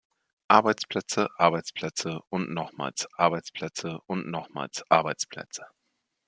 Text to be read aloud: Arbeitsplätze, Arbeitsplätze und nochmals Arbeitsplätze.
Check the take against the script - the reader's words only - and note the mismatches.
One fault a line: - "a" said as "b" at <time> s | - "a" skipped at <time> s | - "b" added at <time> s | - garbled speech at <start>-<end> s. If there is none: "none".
- "und nochmals Arbeitsplätze" added at 4.1 s